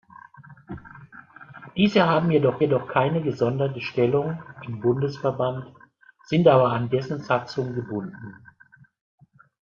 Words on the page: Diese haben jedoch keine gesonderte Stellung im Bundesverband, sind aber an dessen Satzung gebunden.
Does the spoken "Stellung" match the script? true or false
true